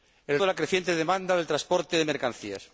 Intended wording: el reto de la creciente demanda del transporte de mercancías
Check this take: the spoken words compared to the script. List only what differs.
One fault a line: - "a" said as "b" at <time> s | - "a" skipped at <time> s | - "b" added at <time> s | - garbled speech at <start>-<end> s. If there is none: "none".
- "reto" skipped at 0.4 s